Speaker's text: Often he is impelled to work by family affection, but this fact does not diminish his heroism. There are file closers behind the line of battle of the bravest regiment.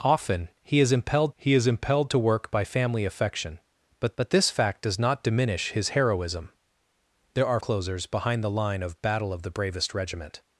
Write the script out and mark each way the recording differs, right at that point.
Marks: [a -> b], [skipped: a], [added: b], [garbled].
Often he is impelled [added: he is impelled] to work by family affection, but [added: but] this fact does not diminish his heroism. There are [skipped: file] closers behind the line of battle of the bravest regiment.